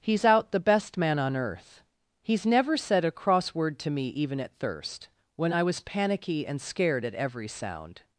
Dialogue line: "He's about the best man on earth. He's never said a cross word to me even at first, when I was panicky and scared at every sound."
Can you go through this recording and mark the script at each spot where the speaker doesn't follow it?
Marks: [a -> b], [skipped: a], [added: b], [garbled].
"He's [about -> out] the best man on earth. He's never said a cross word to me even at [first, -> thirst] when I was panicky and scared at every sound."